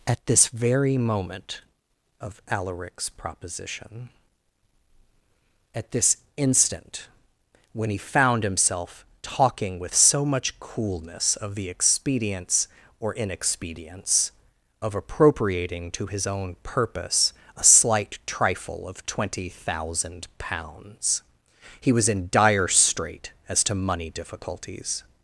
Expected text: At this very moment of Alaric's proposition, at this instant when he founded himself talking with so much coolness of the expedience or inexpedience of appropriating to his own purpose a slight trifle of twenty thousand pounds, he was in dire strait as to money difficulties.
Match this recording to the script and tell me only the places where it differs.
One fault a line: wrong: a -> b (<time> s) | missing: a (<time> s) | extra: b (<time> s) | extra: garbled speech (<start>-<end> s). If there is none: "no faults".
wrong: founded -> found (8.0 s)